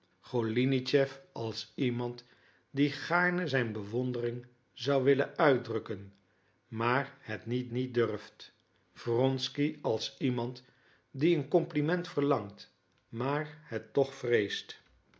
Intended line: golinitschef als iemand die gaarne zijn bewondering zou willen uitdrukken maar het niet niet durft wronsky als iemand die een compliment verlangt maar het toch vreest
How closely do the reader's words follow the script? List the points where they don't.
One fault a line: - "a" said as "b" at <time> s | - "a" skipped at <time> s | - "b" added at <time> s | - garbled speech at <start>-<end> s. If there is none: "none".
none